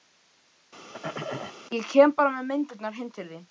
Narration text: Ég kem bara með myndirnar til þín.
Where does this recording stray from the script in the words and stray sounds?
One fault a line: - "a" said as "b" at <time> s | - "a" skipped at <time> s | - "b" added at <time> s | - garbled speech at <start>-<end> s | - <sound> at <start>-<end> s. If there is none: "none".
- throat clearing at 0.9-1.6 s
- "heim" added at 3.0 s